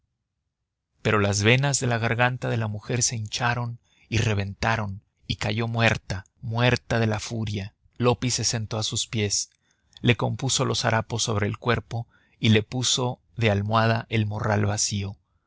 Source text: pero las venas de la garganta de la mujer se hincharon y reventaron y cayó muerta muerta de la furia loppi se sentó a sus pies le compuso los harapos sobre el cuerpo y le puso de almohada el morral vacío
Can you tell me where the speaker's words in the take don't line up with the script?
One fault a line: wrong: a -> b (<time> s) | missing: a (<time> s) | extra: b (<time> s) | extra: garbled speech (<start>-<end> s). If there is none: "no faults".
no faults